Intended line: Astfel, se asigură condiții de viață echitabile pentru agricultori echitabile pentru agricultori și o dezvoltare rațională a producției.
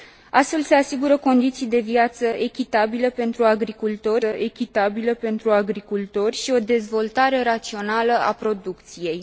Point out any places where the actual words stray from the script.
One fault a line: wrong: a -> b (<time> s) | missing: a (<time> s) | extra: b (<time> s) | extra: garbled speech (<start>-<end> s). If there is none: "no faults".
no faults